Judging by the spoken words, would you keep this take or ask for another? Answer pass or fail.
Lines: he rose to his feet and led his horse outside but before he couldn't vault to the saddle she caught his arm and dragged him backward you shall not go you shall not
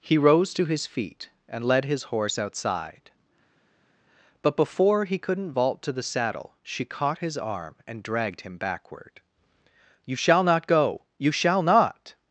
pass